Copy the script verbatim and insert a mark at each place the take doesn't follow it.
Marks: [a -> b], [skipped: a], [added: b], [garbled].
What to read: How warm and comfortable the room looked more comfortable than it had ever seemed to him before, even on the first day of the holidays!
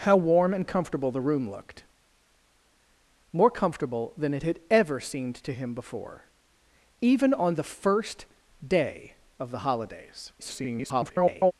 How warm and comfortable the room looked more comfortable than it had ever seemed to him before, even on the first day of the holidays! [garbled]